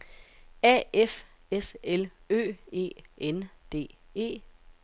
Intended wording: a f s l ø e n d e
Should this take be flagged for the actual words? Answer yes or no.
no